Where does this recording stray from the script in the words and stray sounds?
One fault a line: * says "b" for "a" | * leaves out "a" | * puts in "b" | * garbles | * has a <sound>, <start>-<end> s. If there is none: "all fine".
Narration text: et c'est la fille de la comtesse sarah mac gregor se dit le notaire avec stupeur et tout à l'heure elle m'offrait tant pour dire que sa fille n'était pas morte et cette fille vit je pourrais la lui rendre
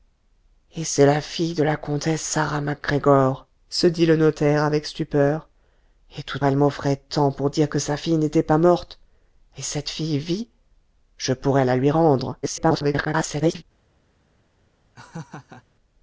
* leaves out "à l'heure"
* garbles
* has a laugh, 14.9-15.6 s